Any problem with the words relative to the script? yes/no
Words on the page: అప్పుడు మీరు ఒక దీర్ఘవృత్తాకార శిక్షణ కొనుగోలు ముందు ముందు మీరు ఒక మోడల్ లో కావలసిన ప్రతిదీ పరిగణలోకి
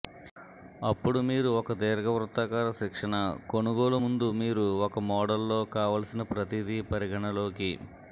yes